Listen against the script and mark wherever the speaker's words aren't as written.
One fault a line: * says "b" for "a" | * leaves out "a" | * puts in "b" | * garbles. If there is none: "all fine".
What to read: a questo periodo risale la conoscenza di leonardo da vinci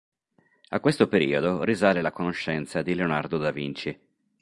all fine